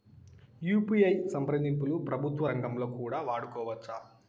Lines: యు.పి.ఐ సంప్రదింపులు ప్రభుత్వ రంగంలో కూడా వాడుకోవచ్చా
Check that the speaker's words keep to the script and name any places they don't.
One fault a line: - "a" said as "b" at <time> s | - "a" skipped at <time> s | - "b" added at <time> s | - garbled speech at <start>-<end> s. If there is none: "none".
none